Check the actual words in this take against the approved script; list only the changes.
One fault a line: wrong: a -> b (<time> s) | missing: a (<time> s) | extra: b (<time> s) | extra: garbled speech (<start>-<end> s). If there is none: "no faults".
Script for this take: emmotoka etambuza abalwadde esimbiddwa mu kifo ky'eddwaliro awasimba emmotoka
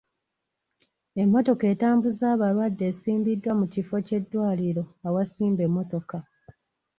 no faults